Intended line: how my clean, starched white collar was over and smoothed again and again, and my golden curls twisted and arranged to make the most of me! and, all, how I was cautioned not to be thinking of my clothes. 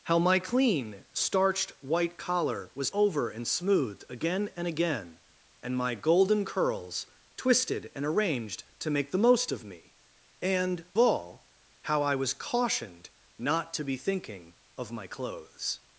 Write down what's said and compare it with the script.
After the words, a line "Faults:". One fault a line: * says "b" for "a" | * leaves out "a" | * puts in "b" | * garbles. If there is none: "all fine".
how my clean, starched white collar was over and smoothed again and again, and my golden curls twisted and arranged to make the most of me! and, all, how I was cautioned not to be thinking of my clothes.
Faults:
all fine